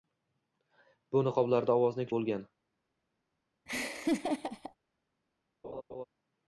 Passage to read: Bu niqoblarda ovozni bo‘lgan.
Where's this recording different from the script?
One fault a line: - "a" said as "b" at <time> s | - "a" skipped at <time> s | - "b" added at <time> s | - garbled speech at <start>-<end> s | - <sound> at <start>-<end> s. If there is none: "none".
- laugh at 3.7-4.8 s
- laugh at 5.6-6.1 s